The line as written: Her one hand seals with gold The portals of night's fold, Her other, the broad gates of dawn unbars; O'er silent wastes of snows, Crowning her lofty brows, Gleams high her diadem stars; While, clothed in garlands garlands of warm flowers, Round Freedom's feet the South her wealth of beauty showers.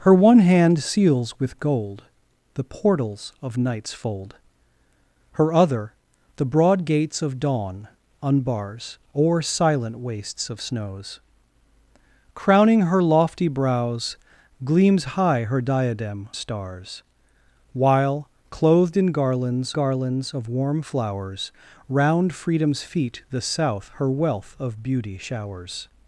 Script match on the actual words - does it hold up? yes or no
yes